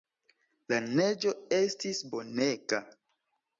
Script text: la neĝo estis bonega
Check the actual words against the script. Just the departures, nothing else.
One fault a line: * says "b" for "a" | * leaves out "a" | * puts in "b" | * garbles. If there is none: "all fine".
all fine